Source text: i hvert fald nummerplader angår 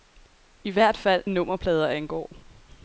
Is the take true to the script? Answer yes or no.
yes